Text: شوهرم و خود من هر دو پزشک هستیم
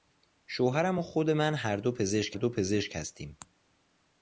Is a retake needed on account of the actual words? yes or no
yes